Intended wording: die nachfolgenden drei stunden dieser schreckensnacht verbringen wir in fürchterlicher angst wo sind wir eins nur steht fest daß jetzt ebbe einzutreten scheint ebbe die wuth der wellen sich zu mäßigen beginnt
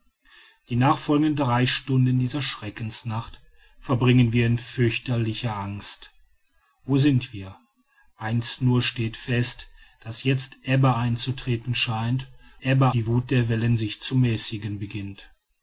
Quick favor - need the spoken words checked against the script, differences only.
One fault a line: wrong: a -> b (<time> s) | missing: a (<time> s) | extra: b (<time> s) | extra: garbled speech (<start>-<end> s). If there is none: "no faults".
no faults